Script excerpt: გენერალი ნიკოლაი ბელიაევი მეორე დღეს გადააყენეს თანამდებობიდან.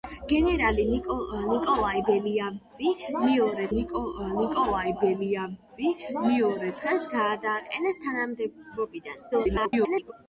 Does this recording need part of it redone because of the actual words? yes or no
yes